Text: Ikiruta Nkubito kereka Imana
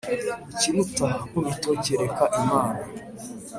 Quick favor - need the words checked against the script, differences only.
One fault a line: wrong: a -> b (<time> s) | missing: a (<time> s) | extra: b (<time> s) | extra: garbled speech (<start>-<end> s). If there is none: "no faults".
no faults